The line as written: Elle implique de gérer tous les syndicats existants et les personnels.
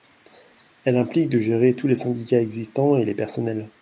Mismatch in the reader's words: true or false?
false